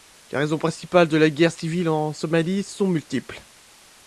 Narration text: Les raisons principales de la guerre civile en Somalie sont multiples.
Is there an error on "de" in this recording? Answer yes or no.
no